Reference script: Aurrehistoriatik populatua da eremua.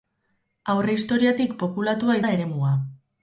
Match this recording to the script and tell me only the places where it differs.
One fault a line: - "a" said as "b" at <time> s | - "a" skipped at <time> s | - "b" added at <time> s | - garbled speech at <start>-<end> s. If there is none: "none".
none